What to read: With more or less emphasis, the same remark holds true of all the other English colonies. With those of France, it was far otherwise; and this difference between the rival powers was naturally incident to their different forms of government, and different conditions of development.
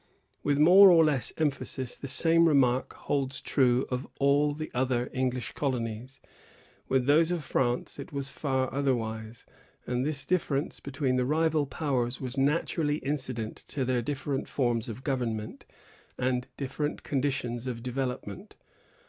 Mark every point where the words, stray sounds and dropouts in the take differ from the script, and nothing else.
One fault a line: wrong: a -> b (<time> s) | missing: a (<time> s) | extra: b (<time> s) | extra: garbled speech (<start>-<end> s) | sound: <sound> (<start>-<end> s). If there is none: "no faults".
no faults